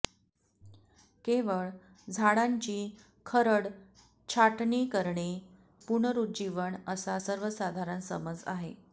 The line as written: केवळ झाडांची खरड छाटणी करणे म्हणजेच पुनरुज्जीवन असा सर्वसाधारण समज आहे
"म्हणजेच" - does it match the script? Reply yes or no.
no